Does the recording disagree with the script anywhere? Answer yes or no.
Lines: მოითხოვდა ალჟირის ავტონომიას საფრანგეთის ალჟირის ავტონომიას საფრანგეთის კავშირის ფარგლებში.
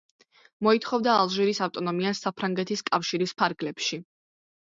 yes